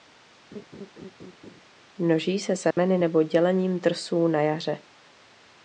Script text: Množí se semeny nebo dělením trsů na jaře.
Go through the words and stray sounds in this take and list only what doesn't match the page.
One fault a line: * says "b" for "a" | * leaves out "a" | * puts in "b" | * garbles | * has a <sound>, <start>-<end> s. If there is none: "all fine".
* has a laugh, 0.5-1.6 s
* has a dropout, 2.7-2.8 s